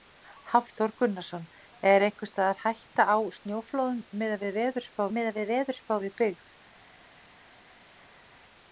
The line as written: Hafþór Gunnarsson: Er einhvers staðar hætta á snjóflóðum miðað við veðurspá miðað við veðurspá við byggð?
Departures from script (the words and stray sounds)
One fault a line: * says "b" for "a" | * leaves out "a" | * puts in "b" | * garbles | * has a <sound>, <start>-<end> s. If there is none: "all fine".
all fine